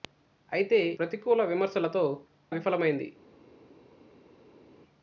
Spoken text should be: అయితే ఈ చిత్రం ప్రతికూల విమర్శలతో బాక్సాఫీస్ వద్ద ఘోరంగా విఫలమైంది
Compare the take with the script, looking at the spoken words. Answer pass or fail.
fail